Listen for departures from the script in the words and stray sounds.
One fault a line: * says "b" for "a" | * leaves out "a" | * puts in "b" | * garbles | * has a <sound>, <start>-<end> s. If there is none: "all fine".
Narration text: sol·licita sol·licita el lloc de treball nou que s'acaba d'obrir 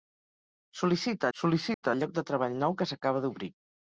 * has a dropout, 1.7-1.8 s